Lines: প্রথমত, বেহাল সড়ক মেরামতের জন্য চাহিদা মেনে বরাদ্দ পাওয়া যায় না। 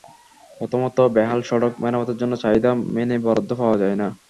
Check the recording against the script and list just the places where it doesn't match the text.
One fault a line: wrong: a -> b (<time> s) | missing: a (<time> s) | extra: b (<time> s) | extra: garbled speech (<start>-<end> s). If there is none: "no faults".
no faults